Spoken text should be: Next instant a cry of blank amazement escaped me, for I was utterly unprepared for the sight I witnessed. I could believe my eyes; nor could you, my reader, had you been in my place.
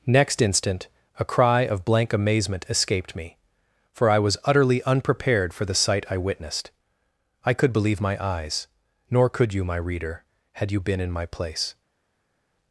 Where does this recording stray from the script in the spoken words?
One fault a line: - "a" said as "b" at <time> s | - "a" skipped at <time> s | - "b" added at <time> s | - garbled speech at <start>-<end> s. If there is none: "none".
none